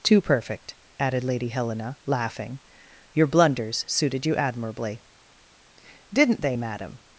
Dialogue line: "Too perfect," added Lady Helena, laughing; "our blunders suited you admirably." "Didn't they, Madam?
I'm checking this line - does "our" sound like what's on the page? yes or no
no